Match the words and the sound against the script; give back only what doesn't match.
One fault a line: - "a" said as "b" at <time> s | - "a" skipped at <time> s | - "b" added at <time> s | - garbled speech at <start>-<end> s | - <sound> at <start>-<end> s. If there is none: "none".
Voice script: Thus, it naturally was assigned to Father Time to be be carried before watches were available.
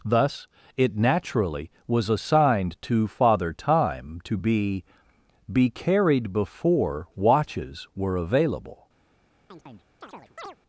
- chirp at 9.5-10.6 s